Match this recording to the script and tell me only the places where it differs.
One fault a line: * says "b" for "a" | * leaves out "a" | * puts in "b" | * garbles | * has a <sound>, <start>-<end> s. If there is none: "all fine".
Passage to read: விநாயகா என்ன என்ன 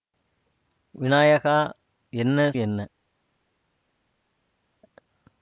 all fine